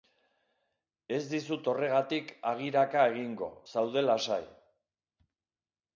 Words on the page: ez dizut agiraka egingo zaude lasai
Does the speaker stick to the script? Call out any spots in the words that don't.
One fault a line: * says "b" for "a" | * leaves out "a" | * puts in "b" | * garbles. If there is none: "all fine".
* puts in "horregatik"